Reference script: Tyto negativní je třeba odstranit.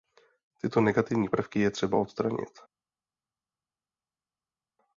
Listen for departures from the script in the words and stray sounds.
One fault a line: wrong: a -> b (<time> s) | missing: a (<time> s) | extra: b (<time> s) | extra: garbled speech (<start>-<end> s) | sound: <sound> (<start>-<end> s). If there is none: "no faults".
extra: prvky (1.3 s)